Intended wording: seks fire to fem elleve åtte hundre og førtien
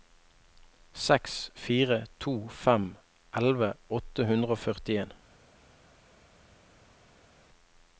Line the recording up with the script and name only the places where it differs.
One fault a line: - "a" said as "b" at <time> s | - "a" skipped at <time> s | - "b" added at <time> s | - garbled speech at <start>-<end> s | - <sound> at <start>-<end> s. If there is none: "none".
none